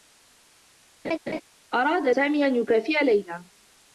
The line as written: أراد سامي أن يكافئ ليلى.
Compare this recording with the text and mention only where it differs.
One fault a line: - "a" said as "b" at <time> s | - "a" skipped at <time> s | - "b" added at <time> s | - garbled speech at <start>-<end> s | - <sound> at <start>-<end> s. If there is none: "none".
- laugh at 1.0-1.4 s